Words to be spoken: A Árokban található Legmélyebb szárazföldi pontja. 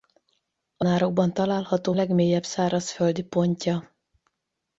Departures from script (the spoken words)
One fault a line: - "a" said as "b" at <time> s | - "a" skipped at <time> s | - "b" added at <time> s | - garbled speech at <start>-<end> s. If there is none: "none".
none